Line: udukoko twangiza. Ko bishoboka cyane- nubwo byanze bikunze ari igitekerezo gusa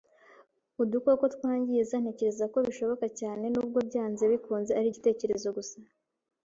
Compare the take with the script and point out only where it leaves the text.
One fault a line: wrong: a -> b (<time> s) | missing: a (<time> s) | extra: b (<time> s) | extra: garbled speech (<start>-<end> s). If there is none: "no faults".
extra: Ntekereza (2.0 s)